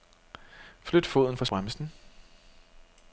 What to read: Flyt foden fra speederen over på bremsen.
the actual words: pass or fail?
fail